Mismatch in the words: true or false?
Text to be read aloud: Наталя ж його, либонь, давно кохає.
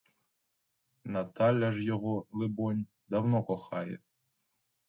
false